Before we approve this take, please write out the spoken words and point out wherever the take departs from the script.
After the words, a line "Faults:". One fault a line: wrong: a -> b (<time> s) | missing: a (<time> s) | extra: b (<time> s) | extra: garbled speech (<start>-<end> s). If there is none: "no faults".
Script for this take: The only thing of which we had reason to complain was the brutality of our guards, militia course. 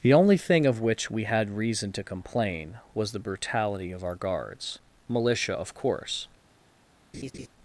The only thing of which we had reason to complain was the brutality of our guards, militia of course.
Faults:
extra: of (5.5 s)